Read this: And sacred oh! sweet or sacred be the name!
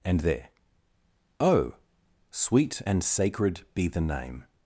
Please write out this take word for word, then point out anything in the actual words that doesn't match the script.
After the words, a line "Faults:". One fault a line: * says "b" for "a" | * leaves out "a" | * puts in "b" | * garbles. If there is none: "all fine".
And there oh! sweet and sacred be the name!
Faults:
* says "there" for "sacred"
* says "and" for "or"